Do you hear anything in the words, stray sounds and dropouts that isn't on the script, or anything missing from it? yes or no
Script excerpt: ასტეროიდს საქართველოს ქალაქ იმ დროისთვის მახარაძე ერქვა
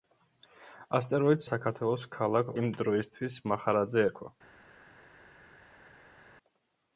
no